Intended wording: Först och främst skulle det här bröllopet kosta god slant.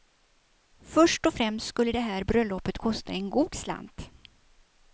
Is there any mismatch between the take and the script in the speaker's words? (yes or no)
yes